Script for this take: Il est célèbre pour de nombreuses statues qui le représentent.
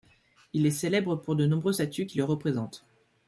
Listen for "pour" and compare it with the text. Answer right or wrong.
right